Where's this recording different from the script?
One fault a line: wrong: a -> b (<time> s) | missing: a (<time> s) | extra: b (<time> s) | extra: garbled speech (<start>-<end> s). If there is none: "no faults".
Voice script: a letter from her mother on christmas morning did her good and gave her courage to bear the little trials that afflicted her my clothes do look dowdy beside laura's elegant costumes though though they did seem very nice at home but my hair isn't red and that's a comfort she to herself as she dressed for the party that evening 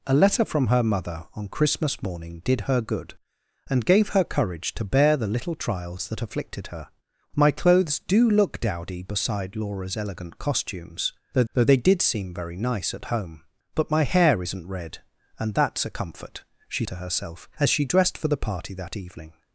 no faults